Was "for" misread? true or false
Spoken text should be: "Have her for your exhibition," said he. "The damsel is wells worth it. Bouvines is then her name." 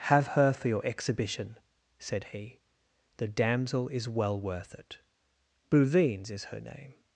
false